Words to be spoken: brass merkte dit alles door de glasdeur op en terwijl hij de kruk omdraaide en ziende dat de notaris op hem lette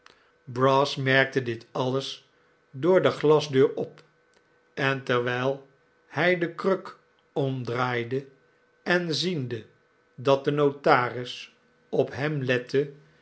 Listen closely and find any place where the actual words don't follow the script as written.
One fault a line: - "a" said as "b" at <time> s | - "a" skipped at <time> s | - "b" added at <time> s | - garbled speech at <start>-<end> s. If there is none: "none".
none